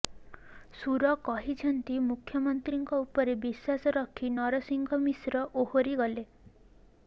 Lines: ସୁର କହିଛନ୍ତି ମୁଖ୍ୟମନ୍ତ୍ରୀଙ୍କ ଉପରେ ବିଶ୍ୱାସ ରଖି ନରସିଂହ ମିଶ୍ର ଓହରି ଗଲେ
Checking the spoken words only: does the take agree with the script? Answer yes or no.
yes